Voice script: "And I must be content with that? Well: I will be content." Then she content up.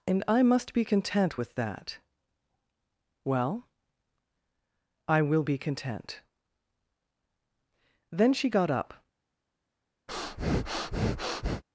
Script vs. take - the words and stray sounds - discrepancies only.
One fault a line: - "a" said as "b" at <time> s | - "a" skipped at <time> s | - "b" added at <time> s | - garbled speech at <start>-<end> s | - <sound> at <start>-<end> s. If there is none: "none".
- "content" said as "got" at 8.5 s
- breath at 10.1-11.6 s